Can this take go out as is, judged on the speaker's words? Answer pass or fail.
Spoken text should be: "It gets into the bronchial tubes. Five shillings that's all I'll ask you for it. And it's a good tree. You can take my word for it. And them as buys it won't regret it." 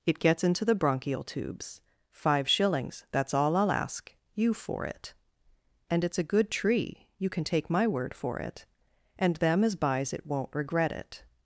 pass